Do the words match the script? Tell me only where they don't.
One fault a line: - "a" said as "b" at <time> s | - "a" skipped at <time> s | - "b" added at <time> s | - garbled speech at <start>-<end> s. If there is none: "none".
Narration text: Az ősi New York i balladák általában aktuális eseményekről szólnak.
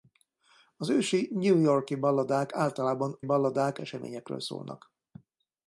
- "aktuális" said as "balladák" at 3.2 s